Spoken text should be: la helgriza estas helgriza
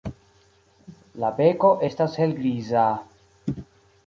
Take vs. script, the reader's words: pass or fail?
fail